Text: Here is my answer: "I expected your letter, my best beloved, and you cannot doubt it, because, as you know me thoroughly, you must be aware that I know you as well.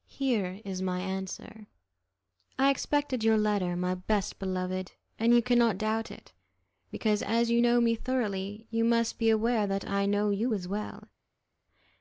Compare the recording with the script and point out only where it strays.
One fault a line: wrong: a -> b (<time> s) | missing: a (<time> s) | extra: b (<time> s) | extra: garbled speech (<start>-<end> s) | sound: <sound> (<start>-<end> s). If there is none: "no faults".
no faults